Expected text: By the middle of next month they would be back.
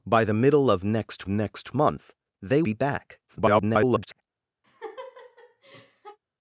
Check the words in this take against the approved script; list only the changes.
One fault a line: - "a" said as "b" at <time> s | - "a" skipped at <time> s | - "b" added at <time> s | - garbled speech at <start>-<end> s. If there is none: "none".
- "next" added at 1.3 s
- "would" skipped at 2.6 s
- garbled speech at 3.3-4.2 s